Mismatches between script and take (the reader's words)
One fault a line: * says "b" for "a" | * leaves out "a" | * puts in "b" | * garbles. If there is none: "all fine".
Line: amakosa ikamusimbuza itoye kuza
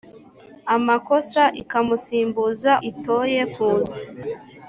all fine